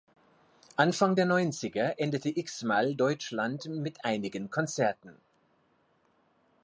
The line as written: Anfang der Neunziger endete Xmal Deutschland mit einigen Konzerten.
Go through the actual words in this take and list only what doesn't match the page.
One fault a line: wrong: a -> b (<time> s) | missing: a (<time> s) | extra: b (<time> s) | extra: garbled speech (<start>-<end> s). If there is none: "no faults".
no faults